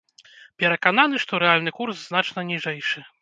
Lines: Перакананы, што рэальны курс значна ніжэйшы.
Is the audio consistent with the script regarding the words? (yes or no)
yes